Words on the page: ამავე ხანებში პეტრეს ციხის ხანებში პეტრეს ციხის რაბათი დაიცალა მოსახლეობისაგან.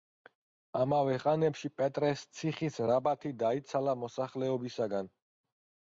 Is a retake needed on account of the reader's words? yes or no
yes